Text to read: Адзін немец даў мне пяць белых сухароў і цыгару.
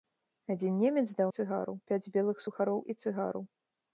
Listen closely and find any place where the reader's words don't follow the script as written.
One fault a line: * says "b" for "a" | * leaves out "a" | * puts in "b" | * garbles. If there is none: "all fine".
* says "цыгару" for "мне"